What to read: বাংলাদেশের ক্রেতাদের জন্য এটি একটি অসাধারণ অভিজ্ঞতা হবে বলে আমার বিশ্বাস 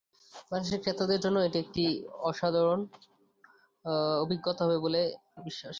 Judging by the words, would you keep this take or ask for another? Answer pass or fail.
fail